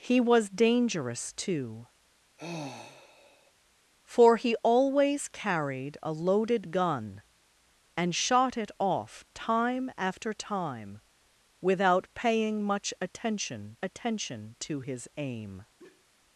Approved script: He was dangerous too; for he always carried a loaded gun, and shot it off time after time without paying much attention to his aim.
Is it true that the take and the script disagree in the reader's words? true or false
true